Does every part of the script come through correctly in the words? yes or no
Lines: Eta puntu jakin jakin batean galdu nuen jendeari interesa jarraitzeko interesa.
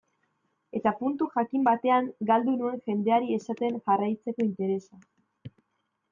no